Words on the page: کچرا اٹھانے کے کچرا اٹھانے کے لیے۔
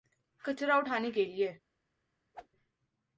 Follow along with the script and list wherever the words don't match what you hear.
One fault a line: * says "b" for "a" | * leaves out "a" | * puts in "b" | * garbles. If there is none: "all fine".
* leaves out "کچرا اٹھانے کے"